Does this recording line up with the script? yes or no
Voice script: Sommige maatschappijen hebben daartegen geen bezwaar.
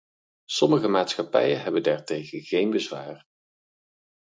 yes